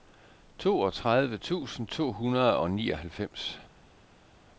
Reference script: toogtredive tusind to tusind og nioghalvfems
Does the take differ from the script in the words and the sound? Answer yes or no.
yes